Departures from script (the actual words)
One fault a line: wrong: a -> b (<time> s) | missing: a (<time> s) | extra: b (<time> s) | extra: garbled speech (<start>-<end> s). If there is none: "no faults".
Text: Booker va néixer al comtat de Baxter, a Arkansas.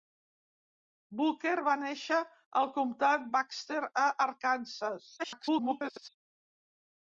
missing: de (3.3 s)
extra: garbled speech (5.2-6.1 s)